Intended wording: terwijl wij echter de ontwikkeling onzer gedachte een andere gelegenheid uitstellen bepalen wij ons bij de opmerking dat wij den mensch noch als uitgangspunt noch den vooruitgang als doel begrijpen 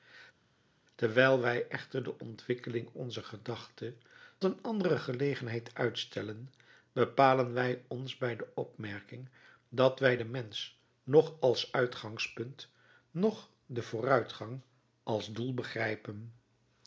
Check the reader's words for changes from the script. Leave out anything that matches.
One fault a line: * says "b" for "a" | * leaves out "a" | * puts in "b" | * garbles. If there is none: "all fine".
all fine